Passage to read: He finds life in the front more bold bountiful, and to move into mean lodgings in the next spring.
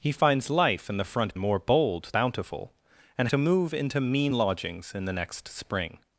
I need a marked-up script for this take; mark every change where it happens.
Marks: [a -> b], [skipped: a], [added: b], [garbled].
He finds life in the front more bold bountiful, and to move into mean lodgings in the next spring.